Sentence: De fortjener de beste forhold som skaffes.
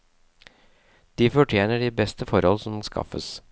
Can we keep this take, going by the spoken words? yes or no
yes